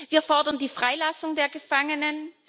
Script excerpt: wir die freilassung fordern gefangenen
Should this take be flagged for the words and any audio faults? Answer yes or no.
yes